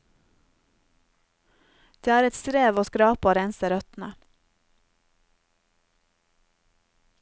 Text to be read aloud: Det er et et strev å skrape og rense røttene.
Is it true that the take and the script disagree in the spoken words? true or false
true